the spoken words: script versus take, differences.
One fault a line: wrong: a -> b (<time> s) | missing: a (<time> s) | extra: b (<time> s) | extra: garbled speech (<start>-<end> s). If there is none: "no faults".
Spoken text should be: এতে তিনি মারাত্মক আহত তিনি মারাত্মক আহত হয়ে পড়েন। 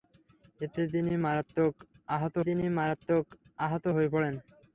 no faults